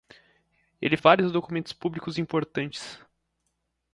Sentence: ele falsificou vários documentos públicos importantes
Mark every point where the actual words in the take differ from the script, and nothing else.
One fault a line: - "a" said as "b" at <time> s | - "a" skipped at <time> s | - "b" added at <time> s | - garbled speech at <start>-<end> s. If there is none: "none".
- "falsificou" skipped at 1.0 s